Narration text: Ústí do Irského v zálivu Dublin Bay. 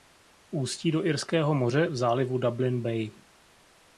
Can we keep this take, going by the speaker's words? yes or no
no